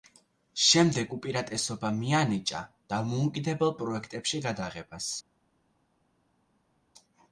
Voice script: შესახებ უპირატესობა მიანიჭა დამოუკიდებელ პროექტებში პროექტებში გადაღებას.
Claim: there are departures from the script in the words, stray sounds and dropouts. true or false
true